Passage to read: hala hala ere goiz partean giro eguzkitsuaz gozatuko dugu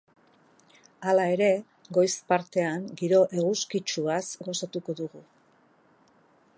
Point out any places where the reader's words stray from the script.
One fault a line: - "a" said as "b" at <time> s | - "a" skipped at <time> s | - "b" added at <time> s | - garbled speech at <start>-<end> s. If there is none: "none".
- "hala" skipped at 1.2 s